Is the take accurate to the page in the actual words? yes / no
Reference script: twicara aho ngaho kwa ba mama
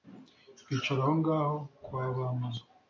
yes